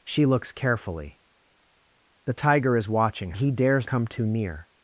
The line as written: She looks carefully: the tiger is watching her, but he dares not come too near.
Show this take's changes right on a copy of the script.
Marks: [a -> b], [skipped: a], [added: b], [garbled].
She looks carefully: the tiger is watching [skipped: her, but] he dares [skipped: not] come too near.